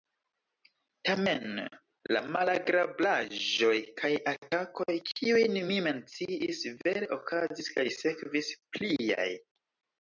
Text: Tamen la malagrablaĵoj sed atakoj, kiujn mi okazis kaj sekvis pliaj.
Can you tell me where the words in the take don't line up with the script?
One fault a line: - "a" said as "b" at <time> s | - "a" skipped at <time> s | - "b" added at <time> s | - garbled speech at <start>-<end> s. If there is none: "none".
- "sed" said as "kaj" at 4.0 s
- "menciis vere" added at 5.9 s